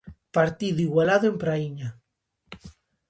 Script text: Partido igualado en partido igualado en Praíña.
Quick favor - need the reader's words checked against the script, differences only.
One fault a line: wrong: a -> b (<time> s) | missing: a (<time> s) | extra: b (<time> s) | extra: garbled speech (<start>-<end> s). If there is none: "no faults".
missing: partido igualado en (1.4 s)